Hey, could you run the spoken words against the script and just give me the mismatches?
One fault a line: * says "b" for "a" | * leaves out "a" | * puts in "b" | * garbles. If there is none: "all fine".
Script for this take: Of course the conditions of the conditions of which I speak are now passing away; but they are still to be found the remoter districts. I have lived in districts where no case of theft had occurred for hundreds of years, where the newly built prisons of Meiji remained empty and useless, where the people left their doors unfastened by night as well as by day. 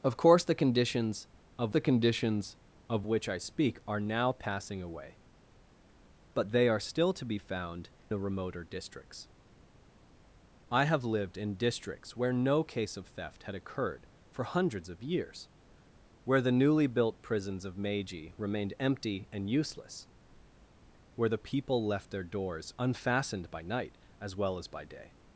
all fine